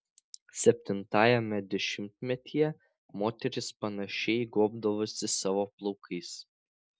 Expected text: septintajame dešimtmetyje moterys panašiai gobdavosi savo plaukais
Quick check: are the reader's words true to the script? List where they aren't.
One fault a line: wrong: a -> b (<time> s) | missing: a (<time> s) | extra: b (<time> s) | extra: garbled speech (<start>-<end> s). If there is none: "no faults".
no faults